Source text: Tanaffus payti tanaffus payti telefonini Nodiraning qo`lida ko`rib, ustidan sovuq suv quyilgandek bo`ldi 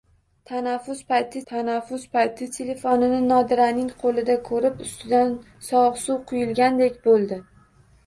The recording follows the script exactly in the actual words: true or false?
true